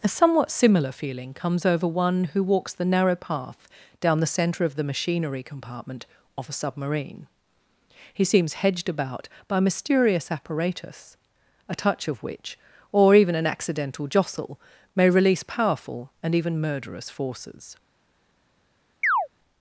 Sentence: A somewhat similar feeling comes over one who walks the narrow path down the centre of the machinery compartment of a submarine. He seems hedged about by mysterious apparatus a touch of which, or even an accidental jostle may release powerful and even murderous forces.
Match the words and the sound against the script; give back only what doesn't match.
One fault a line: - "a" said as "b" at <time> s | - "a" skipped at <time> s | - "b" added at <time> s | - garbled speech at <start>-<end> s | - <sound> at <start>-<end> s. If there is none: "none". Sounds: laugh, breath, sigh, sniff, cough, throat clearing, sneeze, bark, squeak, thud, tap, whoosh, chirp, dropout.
- chirp at 19.0-19.3 s